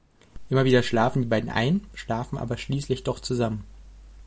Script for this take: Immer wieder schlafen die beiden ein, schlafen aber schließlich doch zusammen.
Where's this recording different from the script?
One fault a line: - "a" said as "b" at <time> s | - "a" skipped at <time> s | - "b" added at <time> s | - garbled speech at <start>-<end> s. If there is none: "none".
none